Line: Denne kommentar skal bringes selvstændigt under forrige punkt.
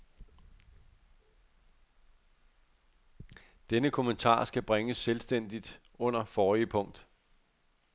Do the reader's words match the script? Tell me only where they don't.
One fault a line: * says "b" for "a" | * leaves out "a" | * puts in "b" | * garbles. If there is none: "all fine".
all fine